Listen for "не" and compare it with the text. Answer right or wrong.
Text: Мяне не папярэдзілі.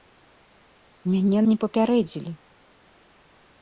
right